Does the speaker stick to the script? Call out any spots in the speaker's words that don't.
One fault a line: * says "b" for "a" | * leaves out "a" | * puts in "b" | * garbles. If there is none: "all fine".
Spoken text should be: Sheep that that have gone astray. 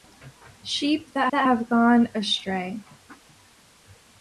all fine